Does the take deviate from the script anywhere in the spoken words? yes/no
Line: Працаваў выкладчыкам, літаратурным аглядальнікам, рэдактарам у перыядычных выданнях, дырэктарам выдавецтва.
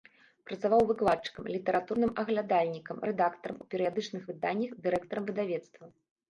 no